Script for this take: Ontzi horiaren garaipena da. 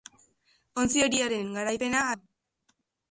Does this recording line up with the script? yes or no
yes